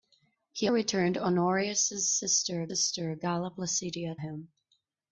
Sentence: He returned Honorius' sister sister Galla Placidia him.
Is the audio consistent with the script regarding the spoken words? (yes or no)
yes